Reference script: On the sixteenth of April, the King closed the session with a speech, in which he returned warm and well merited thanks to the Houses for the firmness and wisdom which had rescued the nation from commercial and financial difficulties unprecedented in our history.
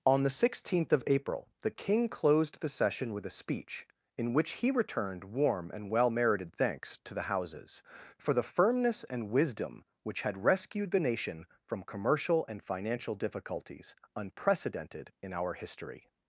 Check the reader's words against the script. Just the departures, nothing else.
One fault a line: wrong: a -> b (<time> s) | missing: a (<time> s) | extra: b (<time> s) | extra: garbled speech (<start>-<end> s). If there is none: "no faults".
no faults